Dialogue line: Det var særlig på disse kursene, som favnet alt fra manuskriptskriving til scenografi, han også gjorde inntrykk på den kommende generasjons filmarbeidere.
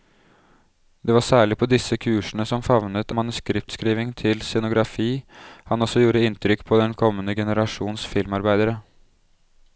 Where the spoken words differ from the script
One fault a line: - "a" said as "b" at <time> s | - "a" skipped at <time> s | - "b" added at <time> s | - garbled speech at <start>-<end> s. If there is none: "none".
- "alt fra" skipped at 3.1 s